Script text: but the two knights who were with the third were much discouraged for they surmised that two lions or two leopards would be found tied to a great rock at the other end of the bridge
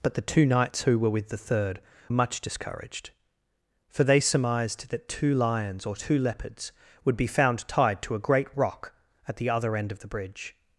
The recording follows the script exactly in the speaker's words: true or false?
false